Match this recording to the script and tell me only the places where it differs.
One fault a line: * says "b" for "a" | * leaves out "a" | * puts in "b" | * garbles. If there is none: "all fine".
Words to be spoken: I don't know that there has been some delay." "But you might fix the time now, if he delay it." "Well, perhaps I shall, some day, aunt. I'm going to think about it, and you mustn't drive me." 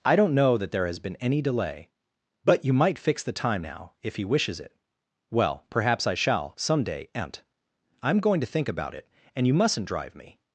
* says "any" for "some"
* says "wishes" for "delay"